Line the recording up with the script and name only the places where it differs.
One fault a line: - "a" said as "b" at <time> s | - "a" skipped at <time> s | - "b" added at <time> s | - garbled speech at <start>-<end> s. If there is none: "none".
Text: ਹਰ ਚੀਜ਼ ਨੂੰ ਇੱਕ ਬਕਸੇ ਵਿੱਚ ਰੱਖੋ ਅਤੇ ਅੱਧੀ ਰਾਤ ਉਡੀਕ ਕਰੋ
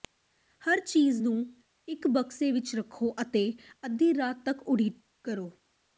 - "ਤੱਕ" added at 4.4 s